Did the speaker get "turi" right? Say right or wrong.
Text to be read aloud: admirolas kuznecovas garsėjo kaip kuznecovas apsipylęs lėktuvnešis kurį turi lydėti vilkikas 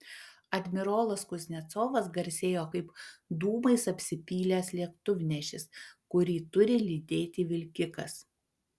right